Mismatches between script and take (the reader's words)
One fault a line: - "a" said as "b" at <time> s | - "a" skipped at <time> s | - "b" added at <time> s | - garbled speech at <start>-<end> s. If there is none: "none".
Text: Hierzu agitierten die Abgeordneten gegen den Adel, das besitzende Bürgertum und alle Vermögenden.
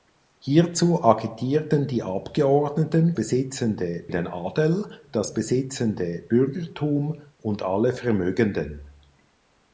- "gegen" said as "besitzende" at 3.1 s